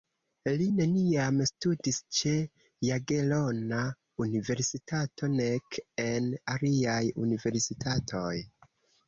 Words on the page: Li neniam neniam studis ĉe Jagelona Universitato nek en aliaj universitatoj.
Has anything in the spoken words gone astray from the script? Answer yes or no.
yes